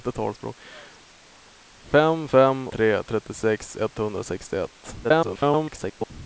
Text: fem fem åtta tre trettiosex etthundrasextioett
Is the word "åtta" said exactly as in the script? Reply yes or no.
no